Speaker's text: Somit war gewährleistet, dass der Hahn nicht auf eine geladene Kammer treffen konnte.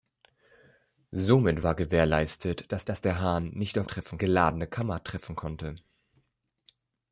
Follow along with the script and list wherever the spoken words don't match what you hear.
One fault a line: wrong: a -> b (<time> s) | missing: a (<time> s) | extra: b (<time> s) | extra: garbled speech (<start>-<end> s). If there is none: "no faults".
extra: dass (2.9 s)
wrong: eine -> treffen (3.9 s)